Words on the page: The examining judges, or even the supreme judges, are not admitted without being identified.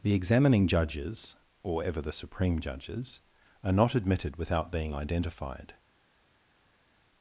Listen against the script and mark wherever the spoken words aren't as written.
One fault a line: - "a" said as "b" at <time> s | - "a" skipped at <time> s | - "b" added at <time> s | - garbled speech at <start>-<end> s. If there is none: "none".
- "even" said as "ever" at 1.8 s